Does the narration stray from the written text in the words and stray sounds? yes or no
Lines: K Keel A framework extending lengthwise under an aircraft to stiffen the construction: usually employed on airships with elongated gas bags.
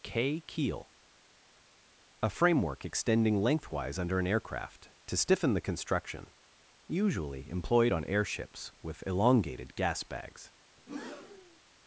yes